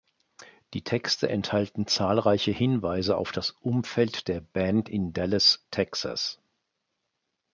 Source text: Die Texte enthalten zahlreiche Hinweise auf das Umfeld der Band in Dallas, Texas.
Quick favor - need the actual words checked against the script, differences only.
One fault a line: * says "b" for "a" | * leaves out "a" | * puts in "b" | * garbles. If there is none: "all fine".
all fine